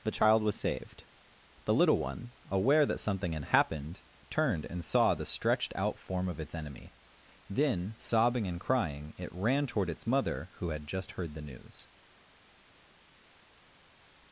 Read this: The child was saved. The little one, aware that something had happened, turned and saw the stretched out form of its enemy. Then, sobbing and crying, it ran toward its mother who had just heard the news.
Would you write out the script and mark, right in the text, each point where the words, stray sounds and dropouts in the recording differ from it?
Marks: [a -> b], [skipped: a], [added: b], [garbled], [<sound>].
The child was saved. The little one, aware that something had happened, turned and saw the stretched out form of its enemy. Then, sobbing and crying, it ran toward its mother who had just heard the news.